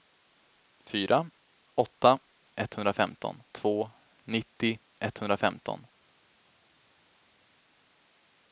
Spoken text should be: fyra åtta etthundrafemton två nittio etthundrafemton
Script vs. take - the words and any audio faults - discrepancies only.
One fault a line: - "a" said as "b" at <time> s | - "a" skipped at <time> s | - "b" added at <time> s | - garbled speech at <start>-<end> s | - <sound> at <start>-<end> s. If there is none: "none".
none